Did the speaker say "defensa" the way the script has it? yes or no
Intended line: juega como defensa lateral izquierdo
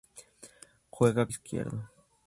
no